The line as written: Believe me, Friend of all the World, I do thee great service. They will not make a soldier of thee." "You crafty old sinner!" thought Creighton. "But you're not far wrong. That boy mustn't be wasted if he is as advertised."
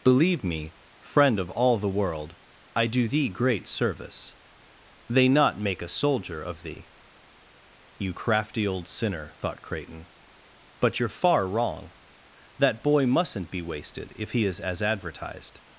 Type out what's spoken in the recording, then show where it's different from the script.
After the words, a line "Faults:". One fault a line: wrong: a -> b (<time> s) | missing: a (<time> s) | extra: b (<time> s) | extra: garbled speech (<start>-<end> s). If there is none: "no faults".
Believe me, Friend of all the World, I do thee great service. They not make a soldier of thee." "You crafty old sinner!" thought Creighton. "But you're far wrong. That boy mustn't be wasted if he is as advertised."
Faults:
missing: will (5.3 s)
missing: not (11.1 s)